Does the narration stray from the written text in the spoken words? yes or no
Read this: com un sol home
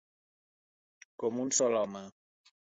no